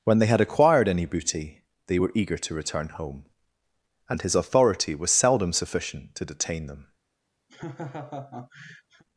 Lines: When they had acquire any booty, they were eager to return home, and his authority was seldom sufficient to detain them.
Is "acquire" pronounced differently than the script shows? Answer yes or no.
yes